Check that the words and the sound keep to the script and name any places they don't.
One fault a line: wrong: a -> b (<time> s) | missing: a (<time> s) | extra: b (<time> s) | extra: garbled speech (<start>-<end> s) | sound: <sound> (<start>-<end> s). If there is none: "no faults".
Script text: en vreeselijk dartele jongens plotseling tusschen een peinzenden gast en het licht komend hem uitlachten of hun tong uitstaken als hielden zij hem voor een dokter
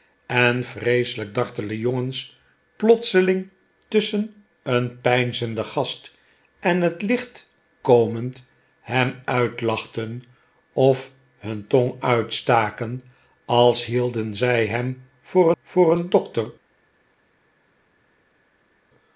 extra: voor (15.6 s)